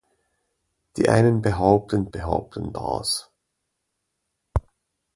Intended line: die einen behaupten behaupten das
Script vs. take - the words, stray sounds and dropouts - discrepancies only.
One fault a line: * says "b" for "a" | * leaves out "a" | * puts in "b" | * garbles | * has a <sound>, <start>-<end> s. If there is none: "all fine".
all fine